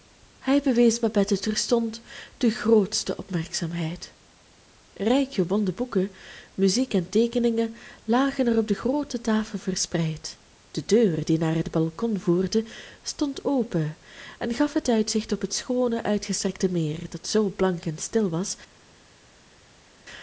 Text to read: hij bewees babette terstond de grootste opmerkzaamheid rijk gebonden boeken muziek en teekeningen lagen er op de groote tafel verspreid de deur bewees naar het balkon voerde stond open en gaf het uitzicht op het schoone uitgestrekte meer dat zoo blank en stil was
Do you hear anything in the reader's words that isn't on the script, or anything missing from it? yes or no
yes